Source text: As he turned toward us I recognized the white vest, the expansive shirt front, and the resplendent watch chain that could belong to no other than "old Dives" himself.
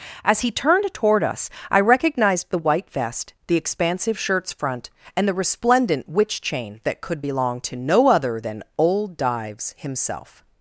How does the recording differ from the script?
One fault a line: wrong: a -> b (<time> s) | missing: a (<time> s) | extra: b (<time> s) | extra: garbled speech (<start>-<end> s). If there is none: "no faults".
wrong: shirt -> shirts (4.2 s)
wrong: watch -> witch (6.1 s)